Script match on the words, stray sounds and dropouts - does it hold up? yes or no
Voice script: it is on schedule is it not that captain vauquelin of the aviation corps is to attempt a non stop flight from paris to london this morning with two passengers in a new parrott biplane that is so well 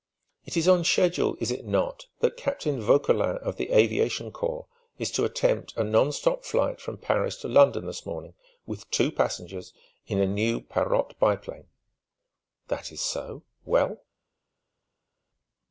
yes